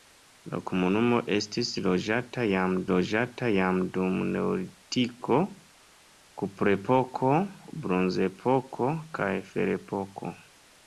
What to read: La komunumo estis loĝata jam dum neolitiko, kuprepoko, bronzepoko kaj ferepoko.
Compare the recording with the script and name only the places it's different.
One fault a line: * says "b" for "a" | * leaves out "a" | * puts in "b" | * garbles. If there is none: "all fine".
* puts in "loĝata jam"